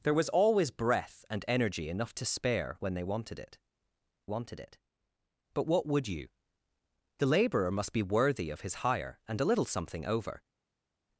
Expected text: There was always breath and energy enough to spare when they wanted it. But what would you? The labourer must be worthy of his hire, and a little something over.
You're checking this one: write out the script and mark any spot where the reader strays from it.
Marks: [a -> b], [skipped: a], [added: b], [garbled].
There was always breath and energy enough to spare when they wanted it. [added: wanted it] But what would you? The labourer must be worthy of his hire, and a little something over.